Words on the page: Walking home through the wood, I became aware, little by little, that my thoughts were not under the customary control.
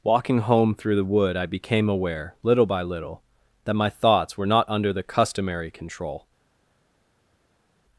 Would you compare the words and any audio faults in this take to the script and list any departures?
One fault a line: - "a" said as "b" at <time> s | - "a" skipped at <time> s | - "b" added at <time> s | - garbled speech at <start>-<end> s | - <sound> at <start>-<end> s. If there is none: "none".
none